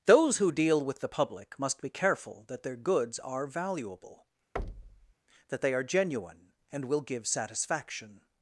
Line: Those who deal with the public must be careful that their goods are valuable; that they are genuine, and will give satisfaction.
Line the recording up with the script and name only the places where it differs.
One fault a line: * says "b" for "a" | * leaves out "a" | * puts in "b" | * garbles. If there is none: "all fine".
all fine